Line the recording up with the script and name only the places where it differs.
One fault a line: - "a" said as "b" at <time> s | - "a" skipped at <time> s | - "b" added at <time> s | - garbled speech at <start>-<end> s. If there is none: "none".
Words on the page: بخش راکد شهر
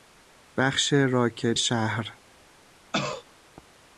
none